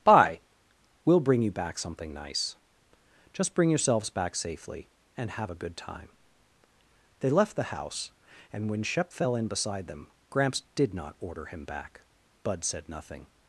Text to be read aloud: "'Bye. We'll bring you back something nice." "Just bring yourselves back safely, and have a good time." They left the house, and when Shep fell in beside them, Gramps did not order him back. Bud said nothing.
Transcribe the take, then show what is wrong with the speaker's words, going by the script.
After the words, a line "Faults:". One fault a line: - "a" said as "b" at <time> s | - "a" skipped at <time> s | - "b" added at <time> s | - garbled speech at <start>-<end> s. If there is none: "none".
"'Bye. We'll bring you back something nice." "Just bring yourselves back safely, and have a good time." They left the house, and when Shep fell in beside them, Gramps did not order him back. Bud said nothing.
Faults:
none